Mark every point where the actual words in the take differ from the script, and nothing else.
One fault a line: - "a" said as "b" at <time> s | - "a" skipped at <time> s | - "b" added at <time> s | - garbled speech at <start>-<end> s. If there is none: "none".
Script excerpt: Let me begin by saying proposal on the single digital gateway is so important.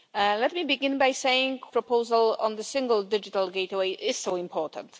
none